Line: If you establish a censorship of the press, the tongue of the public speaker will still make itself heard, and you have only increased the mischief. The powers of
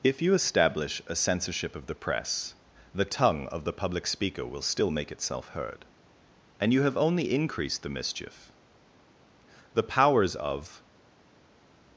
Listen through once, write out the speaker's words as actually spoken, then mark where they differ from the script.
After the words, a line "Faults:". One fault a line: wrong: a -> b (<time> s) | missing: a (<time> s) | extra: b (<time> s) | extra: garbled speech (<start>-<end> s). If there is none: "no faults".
If you establish a censorship of the press, the tongue of the public speaker will still make itself heard, and you have only increased the mischief. The powers of
Faults:
no faults